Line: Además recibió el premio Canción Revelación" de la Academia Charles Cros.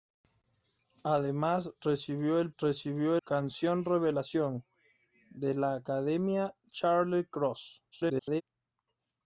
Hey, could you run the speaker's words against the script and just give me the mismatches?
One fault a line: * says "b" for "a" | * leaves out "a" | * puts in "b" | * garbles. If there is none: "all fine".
* says "recibió" for "premio"
* garbles